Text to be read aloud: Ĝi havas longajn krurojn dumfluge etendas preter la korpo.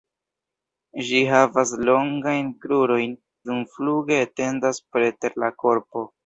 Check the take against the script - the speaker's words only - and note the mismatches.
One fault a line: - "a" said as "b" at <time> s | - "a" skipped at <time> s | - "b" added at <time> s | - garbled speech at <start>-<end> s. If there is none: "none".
none